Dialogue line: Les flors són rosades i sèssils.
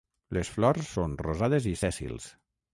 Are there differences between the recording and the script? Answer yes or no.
no